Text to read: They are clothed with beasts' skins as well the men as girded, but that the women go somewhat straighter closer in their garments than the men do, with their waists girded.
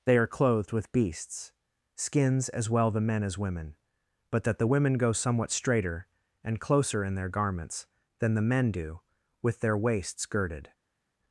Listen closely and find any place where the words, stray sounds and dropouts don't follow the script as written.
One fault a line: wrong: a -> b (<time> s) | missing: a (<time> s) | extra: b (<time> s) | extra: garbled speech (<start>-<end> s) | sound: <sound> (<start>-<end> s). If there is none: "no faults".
wrong: girded -> women (3.4 s)
extra: and (6.4 s)